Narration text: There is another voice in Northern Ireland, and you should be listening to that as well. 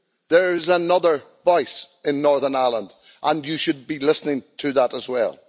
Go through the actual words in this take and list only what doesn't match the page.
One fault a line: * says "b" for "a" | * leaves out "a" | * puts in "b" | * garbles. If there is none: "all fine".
all fine